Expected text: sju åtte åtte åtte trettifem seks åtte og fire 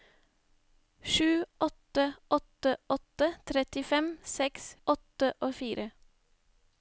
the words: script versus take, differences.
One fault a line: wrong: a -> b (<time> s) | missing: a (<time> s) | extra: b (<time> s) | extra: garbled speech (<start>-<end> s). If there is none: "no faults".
no faults